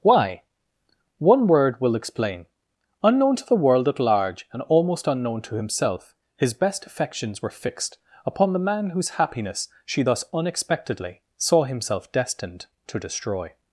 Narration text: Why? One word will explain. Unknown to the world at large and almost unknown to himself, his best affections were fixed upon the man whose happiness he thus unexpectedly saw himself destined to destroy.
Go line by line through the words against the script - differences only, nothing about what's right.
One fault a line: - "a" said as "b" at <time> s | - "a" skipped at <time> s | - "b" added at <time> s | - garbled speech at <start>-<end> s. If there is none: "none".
- "he" said as "she" at 9.8 s